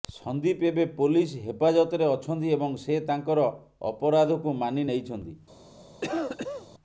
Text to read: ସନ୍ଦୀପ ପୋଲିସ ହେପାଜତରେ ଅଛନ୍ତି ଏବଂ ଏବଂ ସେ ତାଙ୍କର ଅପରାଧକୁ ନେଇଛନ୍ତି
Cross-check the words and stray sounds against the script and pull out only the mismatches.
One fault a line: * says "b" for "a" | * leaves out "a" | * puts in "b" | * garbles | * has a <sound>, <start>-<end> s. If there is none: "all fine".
* puts in "ଏବେ"
* leaves out "ଏବଂ"
* puts in "ମାନି"
* has a cough, 6.0-6.7 s